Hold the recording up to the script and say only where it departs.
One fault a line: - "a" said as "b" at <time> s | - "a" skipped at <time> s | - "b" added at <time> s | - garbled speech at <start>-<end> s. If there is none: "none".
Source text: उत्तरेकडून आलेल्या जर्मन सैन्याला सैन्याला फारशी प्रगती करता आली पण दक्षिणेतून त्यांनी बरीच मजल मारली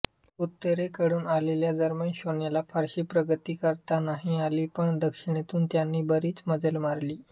- "सैन्याला" skipped at 2.6 s
- "नाही" added at 4.0 s